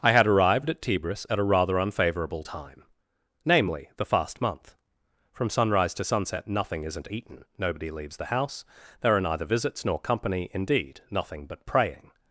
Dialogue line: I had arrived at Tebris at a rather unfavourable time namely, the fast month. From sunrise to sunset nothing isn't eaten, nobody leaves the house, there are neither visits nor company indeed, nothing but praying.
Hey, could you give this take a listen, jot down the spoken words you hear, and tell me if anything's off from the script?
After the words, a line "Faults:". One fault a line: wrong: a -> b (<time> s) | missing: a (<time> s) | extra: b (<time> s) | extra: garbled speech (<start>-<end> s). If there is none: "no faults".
I had arrived at Tebris at a rather unfavourable time namely, the fast month. From sunrise to sunset nothing isn't eaten, nobody leaves the house, there are neither visits nor company indeed, nothing but praying.
Faults:
no faults